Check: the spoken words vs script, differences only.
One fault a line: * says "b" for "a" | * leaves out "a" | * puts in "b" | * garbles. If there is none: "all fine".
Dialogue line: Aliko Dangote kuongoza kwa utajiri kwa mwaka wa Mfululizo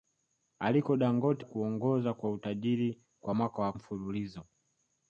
all fine